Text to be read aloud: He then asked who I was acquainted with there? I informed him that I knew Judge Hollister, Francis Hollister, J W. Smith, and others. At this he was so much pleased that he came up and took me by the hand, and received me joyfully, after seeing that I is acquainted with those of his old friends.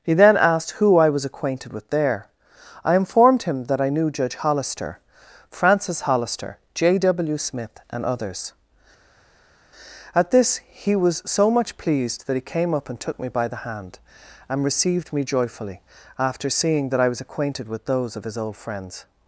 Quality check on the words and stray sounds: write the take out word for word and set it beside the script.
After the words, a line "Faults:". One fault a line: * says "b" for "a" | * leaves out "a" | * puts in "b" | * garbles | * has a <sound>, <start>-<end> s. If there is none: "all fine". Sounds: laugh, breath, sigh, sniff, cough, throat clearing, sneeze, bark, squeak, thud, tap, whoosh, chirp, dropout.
He then asked who I was acquainted with there? I informed him that I knew Judge Hollister, Francis Hollister, J W. Smith, and others. At this he was so much pleased that he came up and took me by the hand, and received me joyfully, after seeing that I was acquainted with those of his old friends.
Faults:
* says "was" for "is"